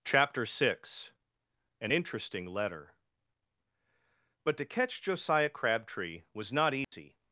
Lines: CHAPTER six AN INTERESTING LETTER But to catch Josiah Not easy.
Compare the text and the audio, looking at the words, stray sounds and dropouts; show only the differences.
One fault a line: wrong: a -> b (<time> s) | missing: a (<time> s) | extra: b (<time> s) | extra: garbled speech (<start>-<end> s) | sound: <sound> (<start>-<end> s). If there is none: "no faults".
extra: Crabtree was (5.5 s)
sound: dropout (6.8-6.9 s)